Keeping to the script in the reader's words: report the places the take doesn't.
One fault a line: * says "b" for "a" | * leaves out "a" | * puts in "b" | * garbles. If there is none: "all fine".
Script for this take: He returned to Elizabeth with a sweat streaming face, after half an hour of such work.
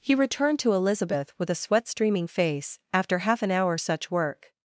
* leaves out "of"